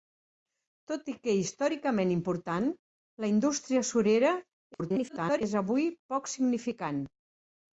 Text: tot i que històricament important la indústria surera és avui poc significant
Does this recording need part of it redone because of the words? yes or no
yes